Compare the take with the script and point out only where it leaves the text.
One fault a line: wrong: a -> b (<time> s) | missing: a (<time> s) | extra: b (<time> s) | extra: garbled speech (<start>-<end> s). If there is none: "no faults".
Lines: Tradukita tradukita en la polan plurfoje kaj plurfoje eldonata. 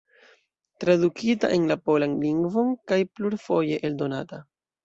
missing: tradukita (1.5 s)
wrong: plurfoje -> lingvon (2.3 s)